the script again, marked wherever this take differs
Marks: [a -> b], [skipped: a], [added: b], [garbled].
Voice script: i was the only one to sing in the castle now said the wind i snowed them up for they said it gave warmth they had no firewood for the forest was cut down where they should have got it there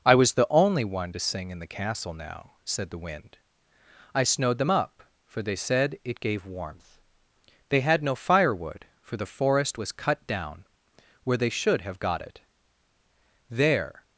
i was the only one to sing in the castle now said the wind i snowed them up for they said it gave warmth they had no firewood for the forest was cut down where they should have got it there